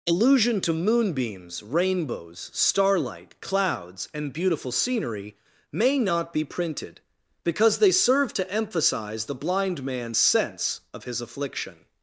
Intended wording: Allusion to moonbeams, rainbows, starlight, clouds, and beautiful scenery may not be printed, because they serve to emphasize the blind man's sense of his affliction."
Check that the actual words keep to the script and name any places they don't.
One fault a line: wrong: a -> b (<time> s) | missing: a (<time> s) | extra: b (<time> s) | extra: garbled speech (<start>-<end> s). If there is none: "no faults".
no faults